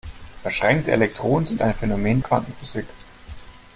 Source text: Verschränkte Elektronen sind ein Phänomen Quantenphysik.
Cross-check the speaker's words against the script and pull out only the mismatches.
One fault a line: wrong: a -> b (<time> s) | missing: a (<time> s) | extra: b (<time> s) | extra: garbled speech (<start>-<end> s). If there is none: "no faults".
no faults